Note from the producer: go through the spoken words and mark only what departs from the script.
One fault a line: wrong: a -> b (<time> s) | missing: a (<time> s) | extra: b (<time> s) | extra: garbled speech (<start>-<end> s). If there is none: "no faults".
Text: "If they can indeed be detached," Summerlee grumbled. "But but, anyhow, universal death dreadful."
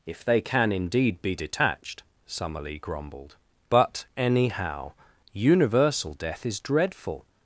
missing: but (4.0 s)
extra: is (6.5 s)